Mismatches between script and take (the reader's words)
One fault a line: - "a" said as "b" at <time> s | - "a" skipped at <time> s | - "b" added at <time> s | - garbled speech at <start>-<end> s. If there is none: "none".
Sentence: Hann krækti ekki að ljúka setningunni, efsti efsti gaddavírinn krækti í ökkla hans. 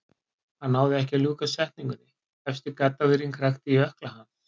- "krækti" said as "náði" at 0.8 s
- "efsti" skipped at 2.8 s